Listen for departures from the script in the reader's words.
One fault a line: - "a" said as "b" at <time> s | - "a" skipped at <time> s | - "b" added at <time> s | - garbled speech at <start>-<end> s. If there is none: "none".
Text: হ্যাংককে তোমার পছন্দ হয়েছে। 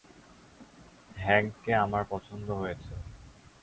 - "তোমার" said as "আমার" at 1.7 s